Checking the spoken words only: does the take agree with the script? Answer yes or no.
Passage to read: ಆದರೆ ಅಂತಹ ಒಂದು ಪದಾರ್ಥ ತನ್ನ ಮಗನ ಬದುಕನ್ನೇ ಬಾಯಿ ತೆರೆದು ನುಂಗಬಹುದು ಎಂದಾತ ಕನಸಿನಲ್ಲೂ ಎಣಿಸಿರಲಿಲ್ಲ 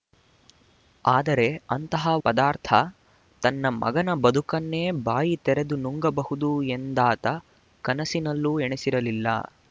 no